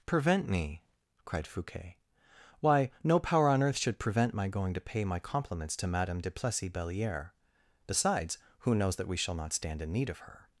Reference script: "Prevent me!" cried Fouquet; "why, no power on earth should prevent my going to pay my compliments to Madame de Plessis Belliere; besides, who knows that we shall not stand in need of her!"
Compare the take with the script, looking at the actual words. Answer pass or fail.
pass